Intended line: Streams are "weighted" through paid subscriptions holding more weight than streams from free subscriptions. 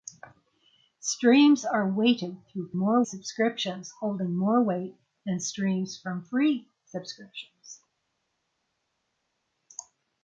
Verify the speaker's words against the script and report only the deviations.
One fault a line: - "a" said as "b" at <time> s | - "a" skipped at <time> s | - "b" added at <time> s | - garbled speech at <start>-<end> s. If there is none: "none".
- "paid" said as "more" at 2.8 s